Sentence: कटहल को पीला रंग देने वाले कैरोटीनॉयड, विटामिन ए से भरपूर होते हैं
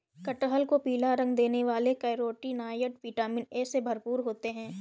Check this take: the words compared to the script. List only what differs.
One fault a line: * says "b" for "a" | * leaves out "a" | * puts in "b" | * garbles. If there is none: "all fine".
all fine